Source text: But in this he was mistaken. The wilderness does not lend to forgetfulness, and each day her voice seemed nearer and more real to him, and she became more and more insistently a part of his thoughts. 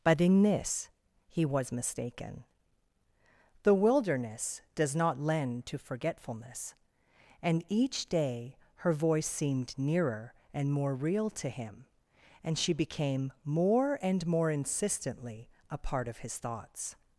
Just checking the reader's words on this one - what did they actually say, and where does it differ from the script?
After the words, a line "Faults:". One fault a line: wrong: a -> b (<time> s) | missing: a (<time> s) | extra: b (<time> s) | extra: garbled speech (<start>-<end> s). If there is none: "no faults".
But in this he was mistaken. The wilderness does not lend to forgetfulness, and each day her voice seemed nearer and more real to him, and she became more and more insistently a part of his thoughts.
Faults:
no faults